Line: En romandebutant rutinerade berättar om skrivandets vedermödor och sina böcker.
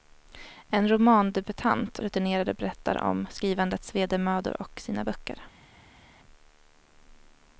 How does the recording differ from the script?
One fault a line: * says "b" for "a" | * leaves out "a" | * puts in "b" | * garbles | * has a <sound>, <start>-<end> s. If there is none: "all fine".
all fine